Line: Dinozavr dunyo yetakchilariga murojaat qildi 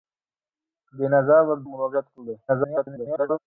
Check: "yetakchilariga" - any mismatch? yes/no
yes